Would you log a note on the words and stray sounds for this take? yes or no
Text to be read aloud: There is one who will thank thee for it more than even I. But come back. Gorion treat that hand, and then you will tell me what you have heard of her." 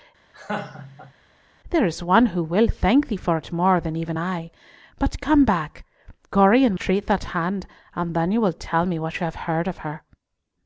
yes